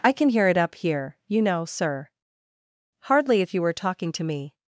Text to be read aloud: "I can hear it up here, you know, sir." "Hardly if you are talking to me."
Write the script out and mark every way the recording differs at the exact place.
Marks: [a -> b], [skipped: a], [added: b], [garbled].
"I can hear it up here, you know, sir." "Hardly if you [are -> were] talking to me."